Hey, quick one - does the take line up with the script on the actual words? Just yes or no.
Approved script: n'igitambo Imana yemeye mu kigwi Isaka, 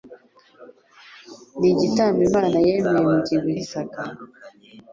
yes